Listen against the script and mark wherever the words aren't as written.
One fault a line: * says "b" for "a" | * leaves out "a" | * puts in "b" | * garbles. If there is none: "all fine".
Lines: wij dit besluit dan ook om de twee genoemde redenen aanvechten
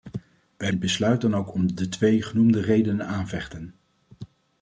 all fine